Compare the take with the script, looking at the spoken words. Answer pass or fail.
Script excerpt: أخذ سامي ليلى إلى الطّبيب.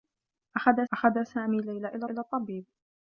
fail